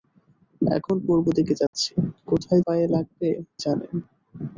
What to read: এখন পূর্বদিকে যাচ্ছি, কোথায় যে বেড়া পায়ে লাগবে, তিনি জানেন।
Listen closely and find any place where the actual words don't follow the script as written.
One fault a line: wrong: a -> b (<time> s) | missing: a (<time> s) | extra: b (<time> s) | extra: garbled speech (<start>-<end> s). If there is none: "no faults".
missing: যে বেড়া (2.6 s)
missing: তিনি (3.3 s)